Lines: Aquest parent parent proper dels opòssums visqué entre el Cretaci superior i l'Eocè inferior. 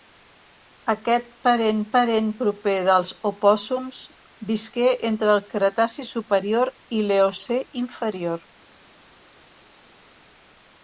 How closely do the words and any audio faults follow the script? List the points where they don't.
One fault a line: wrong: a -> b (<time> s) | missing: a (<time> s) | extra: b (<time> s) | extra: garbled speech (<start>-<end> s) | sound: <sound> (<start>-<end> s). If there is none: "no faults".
no faults